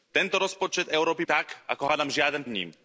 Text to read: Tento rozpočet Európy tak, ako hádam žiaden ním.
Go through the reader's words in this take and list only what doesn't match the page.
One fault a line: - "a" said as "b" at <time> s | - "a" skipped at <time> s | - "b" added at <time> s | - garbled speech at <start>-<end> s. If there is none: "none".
none